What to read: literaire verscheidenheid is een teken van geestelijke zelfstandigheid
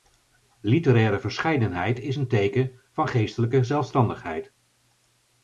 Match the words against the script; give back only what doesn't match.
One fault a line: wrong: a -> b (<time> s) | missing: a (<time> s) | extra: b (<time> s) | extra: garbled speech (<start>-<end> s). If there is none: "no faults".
no faults